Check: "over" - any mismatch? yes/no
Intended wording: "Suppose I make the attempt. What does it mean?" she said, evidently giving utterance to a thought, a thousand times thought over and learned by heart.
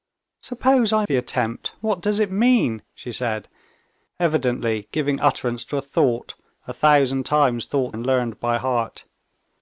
yes